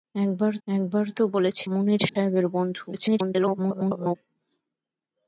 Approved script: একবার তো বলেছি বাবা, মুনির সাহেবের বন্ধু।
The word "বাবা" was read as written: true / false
false